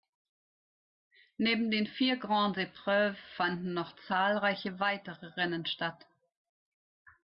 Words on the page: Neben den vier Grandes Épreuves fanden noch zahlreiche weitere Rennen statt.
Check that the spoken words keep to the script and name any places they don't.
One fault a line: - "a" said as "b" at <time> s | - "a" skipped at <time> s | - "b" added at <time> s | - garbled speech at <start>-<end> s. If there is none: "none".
none